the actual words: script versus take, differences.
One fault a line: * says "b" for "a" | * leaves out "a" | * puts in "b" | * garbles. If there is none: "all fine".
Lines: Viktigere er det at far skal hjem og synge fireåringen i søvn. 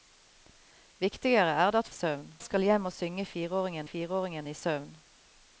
* says "søvn" for "far"
* puts in "fireåringen"